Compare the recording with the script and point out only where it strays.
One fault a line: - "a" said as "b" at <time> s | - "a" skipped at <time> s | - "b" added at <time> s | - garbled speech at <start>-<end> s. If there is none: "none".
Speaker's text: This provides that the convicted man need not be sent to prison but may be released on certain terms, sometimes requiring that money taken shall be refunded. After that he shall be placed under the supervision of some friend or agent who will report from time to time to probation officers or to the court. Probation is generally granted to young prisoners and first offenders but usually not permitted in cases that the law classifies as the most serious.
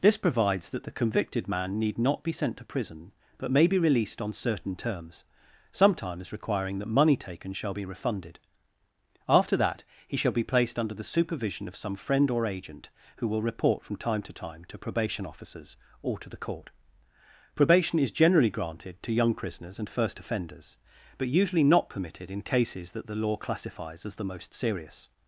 none